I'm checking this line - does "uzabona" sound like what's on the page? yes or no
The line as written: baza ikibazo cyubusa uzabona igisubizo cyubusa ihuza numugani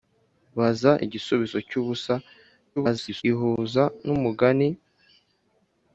no